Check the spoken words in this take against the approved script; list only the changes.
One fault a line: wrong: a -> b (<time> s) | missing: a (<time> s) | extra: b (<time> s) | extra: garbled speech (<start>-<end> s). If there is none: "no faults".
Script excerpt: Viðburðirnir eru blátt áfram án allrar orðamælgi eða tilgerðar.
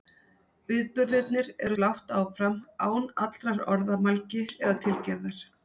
no faults